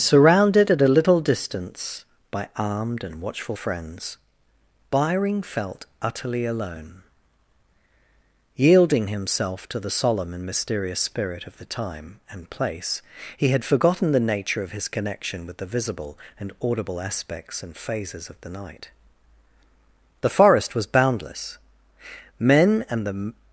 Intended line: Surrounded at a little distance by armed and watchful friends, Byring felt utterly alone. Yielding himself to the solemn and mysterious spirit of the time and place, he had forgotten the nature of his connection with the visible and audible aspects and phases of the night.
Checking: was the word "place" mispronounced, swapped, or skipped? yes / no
no